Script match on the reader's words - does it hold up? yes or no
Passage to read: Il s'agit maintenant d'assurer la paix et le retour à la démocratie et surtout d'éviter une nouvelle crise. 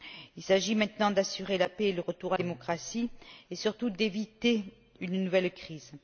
no